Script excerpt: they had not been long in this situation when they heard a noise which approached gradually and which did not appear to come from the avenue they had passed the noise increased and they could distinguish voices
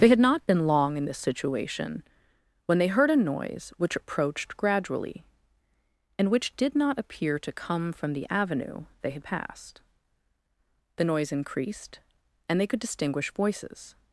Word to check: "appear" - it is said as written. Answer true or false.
true